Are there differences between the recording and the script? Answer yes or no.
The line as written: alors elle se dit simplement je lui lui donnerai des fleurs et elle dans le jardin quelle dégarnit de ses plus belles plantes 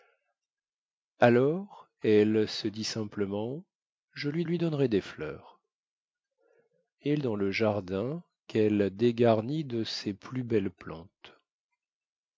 no